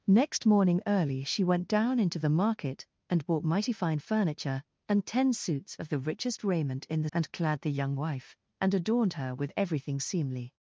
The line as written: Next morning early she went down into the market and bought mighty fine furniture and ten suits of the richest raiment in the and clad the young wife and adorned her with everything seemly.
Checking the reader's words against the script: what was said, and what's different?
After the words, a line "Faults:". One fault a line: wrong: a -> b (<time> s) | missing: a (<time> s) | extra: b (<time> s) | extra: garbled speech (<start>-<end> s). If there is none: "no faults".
Next morning early she went down into the market and bought mighty fine furniture and ten suits of the richest raiment in the and clad the young wife and adorned her with everything seemly.
Faults:
no faults